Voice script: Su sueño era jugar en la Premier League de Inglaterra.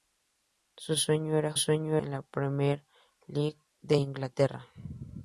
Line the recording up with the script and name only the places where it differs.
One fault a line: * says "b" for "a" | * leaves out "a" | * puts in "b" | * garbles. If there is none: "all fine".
* says "sueño" for "jugar"